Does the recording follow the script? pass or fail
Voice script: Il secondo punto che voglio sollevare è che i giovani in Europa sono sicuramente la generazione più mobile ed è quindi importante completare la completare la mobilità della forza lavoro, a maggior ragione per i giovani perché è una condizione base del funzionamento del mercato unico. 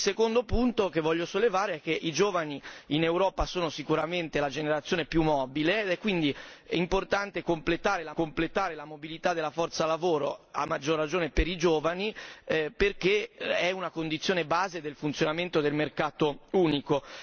pass